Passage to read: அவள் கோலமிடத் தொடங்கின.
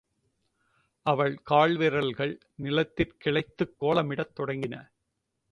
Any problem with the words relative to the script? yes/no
yes